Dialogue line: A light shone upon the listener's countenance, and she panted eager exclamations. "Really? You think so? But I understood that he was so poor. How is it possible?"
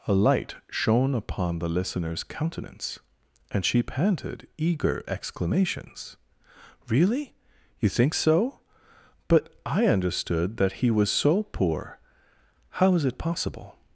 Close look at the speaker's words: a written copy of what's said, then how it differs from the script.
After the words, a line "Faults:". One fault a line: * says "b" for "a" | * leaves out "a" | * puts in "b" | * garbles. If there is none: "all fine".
A light shone upon the listener's countenance, and she panted eager exclamations. "Really? You think so? But I understood that he was so poor. How is it possible?"
Faults:
all fine